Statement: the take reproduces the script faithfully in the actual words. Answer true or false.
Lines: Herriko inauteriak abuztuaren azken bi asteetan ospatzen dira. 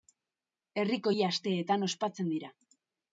false